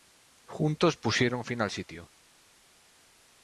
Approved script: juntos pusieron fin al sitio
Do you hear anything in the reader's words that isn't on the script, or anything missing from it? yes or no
no